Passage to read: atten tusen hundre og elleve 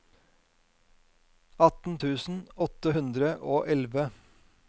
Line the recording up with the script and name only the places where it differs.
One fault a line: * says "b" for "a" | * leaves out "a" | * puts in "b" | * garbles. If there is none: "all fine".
* puts in "åtte"